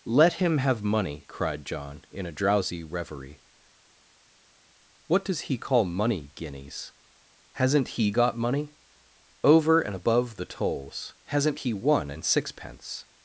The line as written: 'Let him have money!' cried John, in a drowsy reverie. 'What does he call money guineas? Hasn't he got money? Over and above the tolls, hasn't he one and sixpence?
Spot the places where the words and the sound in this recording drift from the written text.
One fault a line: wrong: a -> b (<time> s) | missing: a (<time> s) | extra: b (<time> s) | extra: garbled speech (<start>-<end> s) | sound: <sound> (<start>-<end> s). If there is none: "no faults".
no faults